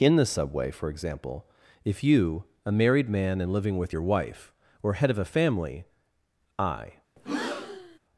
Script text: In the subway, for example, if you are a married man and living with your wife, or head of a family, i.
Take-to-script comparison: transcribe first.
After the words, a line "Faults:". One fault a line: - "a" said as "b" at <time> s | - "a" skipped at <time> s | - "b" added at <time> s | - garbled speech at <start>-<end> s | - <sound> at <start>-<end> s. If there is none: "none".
In the subway, for example, if you a married man and living with your wife, or head of a family, i.
Faults:
- "are" skipped at 2.5 s
- breath at 7.2-8.0 s